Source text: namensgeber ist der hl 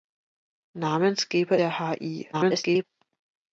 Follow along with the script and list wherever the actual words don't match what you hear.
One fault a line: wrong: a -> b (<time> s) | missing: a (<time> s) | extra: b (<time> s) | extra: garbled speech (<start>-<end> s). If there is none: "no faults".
missing: ist (1.6 s)
extra: garbled speech (2.3-2.8 s)